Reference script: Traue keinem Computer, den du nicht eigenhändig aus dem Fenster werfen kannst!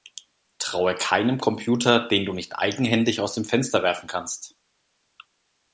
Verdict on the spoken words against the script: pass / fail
pass